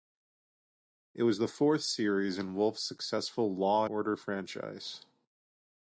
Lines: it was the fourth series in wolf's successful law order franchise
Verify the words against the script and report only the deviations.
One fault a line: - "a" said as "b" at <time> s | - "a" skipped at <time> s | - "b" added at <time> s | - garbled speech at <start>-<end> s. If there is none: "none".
none